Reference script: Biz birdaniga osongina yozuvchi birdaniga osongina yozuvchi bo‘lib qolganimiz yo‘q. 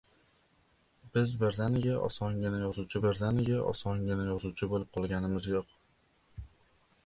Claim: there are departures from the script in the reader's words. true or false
false